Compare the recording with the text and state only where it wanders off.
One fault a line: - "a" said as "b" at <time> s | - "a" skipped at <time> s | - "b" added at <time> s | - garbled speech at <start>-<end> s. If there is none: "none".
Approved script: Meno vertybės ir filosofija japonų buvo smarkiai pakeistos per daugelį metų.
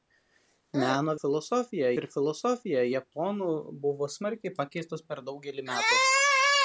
- "vertybės" said as "filosofija" at 1.2 s